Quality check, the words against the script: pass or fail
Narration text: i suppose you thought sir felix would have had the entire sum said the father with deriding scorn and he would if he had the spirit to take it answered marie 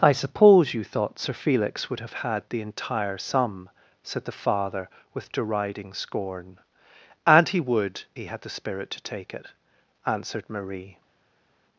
fail